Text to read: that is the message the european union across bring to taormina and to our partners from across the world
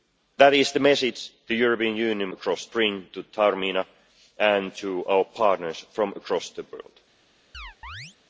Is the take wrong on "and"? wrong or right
right